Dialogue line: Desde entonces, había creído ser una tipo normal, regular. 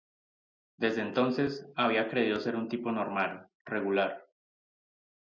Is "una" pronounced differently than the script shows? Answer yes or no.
yes